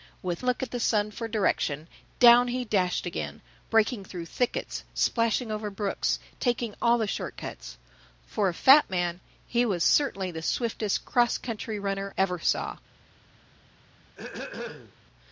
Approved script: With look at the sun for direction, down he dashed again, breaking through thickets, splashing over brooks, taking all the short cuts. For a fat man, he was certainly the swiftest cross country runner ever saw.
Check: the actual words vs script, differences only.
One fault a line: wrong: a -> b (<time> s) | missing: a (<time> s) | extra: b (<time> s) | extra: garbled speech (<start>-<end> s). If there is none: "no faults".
no faults